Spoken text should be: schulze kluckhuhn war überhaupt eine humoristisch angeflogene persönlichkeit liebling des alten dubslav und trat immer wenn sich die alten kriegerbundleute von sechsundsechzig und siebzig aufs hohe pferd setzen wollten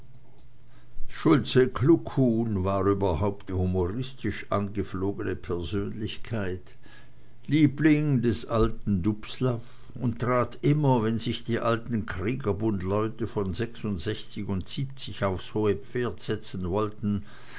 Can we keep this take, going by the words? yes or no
no